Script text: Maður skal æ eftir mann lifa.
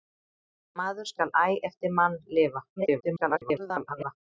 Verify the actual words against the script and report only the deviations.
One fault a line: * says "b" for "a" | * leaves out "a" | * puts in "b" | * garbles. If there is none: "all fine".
* garbles